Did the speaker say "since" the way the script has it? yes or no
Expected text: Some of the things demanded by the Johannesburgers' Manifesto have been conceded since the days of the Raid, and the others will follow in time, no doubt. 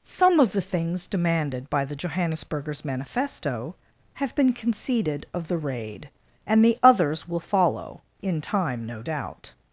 no